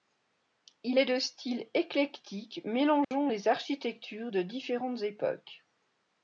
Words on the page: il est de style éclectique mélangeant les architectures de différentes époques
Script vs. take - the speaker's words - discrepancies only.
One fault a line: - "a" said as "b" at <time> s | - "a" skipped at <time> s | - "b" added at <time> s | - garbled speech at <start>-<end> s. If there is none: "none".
none